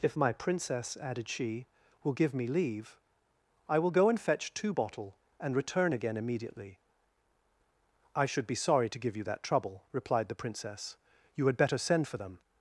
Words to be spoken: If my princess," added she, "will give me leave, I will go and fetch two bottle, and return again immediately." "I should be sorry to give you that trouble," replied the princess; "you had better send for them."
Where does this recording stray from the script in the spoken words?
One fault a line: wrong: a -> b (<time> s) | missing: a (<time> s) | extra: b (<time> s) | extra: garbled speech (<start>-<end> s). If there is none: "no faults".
no faults